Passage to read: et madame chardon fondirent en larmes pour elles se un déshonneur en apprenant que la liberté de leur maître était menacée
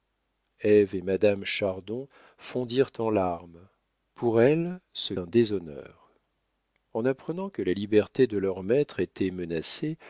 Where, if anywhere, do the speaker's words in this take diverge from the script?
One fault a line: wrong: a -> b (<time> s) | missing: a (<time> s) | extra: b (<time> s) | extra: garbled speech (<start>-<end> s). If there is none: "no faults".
no faults